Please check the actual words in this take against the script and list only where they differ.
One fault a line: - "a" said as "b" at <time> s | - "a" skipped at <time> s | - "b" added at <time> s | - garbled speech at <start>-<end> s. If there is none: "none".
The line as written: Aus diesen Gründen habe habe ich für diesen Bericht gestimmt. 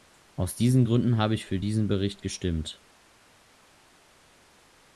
- "habe" skipped at 1.3 s